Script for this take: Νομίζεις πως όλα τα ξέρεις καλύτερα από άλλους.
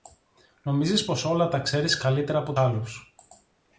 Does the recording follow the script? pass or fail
pass